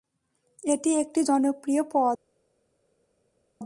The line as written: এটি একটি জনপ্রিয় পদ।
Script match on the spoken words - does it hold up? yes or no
yes